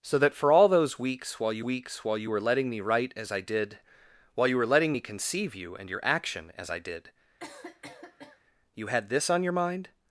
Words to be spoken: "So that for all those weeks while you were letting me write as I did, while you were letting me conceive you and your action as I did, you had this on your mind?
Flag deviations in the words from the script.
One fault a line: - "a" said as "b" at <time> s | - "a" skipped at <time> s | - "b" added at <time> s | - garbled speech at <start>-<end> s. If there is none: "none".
- "weeks while you" added at 1.6 s